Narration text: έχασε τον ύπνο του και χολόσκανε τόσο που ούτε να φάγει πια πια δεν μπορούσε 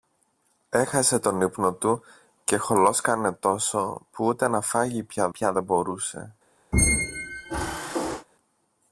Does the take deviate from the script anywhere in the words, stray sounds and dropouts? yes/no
yes